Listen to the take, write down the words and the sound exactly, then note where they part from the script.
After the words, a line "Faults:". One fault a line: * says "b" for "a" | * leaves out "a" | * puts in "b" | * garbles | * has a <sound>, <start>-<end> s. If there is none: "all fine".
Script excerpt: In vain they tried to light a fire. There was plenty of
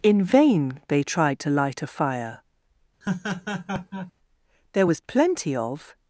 In vain they tried to light a fire. There was plenty of
Faults:
* has a laugh, 3.0-4.1 s